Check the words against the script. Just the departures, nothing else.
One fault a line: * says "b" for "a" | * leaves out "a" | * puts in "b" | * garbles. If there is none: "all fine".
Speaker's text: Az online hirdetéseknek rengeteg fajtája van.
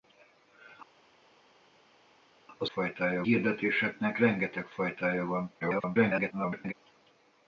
* says "fajtája" for "online"
* garbles